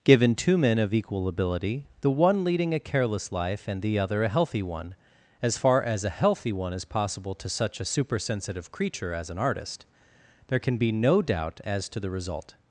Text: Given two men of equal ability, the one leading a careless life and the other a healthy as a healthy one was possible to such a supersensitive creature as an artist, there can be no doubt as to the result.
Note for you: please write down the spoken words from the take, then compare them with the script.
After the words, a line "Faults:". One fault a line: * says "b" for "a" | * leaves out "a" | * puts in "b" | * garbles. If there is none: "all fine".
Given two men of equal ability, the one leading a careless life and the other a healthy one, as far as a healthy one is possible to such a supersensitive creature as an artist, there can be no doubt as to the result.
Faults:
* puts in "one"
* puts in "far as"
* says "is" for "was"